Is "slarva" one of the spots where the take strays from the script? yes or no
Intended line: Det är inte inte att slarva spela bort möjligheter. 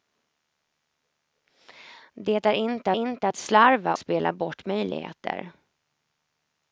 no